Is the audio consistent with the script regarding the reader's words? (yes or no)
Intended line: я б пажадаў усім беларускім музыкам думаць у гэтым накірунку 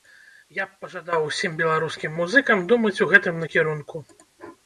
yes